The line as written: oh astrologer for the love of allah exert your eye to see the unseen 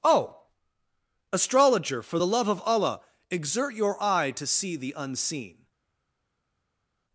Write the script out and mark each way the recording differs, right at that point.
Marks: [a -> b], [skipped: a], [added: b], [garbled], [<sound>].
oh astrologer for the love of allah exert your eye to see the unseen